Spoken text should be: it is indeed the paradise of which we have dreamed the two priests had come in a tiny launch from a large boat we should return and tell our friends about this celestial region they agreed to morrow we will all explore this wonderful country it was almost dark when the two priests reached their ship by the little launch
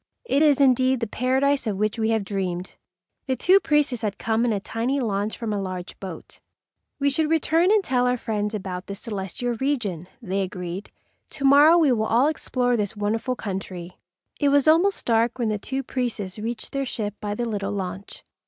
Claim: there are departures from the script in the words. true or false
false